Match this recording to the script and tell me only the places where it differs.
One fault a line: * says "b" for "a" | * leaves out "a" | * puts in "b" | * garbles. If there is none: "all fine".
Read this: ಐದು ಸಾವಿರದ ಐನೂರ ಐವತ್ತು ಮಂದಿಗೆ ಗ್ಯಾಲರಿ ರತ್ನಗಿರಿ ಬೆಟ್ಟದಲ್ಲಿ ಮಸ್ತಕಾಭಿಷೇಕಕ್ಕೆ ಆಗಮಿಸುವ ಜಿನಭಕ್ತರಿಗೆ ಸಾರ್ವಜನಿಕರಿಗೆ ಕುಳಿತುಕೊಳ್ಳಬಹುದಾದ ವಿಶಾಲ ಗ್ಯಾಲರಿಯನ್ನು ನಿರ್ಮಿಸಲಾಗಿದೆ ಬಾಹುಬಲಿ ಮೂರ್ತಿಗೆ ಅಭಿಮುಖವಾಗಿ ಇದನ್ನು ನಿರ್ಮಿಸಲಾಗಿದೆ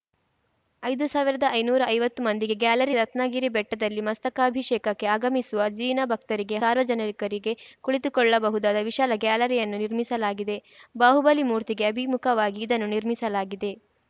all fine